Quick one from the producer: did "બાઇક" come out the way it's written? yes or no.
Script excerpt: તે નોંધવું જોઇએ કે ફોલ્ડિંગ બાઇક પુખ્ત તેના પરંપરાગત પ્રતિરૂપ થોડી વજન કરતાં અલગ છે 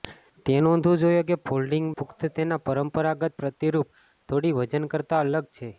no